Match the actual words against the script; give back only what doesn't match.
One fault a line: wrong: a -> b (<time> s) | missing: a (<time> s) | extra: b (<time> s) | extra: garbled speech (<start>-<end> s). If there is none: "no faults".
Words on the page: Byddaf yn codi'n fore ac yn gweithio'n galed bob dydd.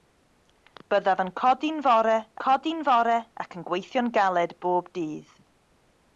extra: codi'n fore (2.4 s)